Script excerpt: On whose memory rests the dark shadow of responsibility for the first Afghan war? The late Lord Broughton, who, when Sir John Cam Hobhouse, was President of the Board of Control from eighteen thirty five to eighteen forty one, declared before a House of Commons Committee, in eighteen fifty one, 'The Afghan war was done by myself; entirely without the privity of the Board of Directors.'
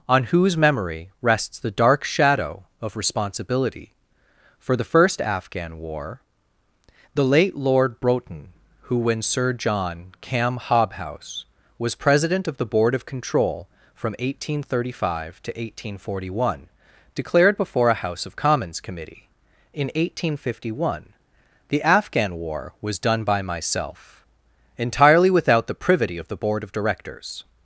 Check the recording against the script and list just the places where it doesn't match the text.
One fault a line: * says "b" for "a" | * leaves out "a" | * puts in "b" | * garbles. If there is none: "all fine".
all fine